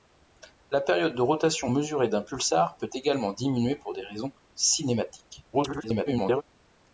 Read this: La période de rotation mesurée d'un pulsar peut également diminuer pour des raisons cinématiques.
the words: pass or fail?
fail